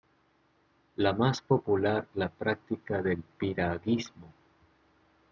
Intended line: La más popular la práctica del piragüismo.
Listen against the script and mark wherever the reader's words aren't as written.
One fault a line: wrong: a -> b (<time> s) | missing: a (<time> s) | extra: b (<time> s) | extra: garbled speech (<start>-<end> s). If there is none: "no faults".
no faults